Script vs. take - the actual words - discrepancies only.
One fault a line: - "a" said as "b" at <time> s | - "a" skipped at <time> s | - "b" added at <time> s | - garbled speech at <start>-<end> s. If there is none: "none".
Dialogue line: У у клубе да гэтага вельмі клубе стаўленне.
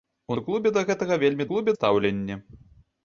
none